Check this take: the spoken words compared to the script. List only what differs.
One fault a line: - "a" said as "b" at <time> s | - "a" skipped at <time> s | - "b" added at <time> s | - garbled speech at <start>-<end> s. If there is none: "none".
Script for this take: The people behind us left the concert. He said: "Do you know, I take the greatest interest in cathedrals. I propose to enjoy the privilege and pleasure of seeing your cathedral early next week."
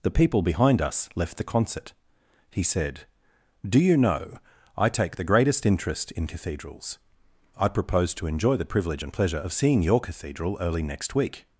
none